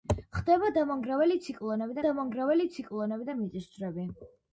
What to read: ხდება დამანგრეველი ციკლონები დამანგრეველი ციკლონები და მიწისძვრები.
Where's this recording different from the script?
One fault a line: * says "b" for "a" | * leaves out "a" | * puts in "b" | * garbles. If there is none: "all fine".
all fine